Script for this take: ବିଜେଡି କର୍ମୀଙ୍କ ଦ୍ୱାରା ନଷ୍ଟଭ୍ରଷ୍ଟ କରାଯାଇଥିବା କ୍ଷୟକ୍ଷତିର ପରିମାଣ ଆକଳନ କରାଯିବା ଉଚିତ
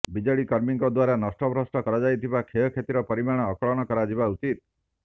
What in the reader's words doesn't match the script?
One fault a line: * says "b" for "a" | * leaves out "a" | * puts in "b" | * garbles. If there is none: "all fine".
all fine